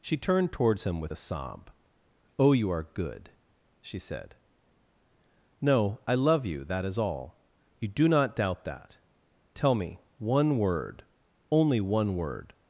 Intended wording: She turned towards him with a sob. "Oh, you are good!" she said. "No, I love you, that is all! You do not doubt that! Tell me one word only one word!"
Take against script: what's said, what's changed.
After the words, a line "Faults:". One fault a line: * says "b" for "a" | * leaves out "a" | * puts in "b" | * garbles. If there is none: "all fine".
She turned towards him with a sob. "Oh, you are good!" she said. "No, I love you, that is all! You do not doubt that! Tell me one word only one word!"
Faults:
all fine